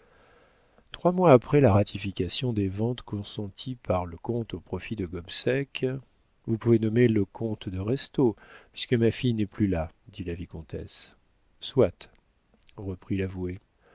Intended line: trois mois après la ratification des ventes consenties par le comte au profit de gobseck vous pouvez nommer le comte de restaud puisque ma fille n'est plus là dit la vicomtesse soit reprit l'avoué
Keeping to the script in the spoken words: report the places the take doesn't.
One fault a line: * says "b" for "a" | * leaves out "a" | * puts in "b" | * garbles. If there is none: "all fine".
all fine